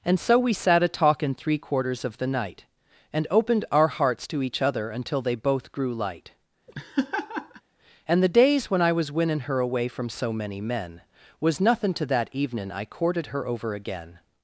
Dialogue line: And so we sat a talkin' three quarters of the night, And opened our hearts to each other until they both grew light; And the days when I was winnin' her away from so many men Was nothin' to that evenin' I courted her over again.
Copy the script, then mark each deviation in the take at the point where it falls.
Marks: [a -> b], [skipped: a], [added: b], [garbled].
And so we sat a talkin' three quarters of the night, And opened our hearts to each other until they both grew light; And the days when I was winnin' her away from so many men Was nothin' to that evenin' I courted her over again.